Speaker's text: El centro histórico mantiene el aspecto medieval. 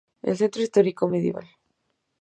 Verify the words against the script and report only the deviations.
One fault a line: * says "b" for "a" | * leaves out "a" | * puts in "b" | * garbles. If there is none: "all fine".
* leaves out "mantiene el aspecto"